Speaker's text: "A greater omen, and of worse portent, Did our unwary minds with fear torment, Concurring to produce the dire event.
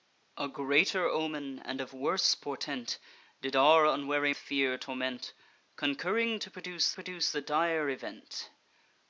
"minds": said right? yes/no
no